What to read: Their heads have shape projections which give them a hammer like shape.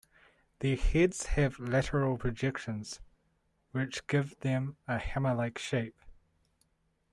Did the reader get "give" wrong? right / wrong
right